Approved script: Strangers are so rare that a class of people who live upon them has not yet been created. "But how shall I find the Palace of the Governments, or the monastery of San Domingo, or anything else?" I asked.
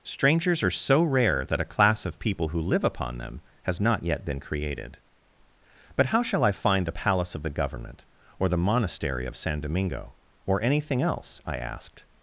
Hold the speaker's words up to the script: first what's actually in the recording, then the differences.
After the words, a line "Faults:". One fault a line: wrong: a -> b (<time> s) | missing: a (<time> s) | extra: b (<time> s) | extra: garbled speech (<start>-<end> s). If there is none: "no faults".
Strangers are so rare that a class of people who live upon them has not yet been created. "But how shall I find the Palace of the Government, or the monastery of San Domingo, or anything else?" I asked.
Faults:
wrong: Governments -> Government (7.5 s)